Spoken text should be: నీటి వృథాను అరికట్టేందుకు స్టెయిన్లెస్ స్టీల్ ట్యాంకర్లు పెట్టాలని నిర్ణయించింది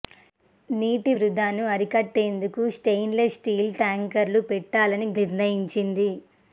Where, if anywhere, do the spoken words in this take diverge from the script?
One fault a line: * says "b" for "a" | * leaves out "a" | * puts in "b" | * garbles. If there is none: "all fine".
all fine